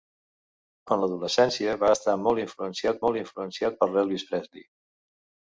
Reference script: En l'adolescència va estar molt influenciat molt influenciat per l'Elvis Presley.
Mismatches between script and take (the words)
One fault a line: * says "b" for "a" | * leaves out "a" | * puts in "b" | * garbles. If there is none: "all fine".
all fine